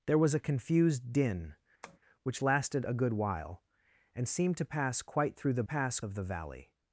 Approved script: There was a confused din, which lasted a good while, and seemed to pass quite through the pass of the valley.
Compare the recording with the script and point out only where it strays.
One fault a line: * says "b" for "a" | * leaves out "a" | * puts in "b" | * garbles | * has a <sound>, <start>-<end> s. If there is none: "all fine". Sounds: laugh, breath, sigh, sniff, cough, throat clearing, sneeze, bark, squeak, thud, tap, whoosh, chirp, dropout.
* has a tap, 1.8-2.0 s